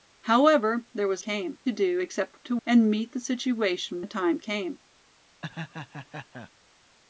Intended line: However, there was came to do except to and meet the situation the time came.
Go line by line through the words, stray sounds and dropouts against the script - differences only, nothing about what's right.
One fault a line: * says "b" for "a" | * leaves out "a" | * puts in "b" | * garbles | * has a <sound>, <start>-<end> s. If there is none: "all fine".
* has a laugh, 5.4-6.5 s